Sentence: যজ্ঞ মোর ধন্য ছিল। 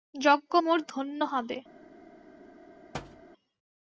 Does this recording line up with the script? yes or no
no